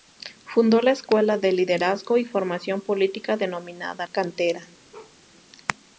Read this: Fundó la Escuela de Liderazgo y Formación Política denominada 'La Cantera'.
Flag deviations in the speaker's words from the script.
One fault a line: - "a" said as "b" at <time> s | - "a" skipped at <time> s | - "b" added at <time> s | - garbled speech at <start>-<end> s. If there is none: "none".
- "La" skipped at 4.1 s